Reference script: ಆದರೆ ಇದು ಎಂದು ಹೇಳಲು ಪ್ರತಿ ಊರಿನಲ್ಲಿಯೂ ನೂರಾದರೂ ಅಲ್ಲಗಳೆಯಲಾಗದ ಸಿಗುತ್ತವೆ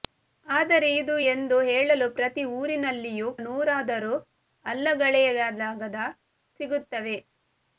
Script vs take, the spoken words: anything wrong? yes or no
no